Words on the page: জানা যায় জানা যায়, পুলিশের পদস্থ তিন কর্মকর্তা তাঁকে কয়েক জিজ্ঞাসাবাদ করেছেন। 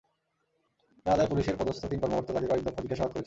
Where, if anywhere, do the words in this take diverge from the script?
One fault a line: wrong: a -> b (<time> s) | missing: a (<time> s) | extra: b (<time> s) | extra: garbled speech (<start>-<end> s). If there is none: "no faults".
missing: জানা যায় (1.3 s)
extra: দফা (2.6 s)